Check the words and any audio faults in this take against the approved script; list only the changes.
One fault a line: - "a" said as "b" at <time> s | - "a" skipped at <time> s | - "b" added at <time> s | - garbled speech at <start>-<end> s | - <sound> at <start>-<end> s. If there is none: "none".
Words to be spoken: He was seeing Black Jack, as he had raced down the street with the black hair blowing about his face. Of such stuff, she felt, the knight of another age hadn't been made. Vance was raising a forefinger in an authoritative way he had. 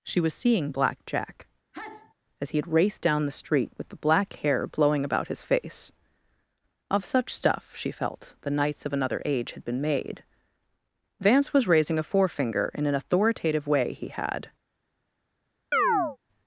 - "He" said as "She" at 0.0 s
- sneeze at 1.7-2.1 s
- "knight" said as "knights" at 8.5 s
- "hadn't" said as "had" at 9.5 s
- chirp at 15.7-16.2 s